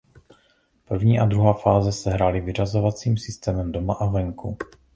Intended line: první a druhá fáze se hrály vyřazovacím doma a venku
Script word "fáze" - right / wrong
right